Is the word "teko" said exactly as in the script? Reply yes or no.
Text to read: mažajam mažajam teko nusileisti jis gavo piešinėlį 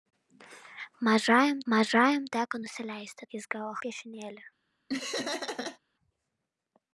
yes